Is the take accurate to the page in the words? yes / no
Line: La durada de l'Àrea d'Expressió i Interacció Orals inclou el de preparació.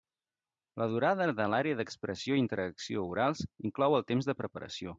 no